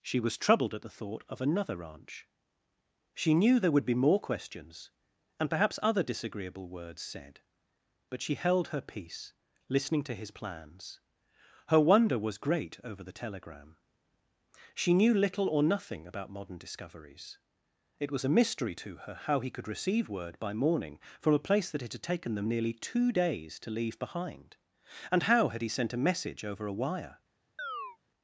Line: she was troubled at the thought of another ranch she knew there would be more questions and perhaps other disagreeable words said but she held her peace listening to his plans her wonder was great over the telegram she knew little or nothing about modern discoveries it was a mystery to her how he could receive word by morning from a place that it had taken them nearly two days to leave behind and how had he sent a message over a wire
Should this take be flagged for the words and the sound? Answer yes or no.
yes